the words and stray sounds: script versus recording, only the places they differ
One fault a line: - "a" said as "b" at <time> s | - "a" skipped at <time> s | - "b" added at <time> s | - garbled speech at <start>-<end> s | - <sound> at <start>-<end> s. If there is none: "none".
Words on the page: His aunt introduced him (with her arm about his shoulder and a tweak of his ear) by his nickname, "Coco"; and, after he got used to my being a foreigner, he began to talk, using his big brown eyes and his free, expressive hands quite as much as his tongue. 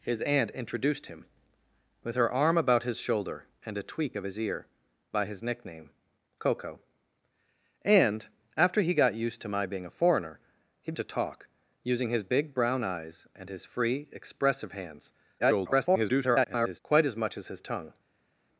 - "began" skipped at 10.9 s
- garbled speech at 15.4-16.8 s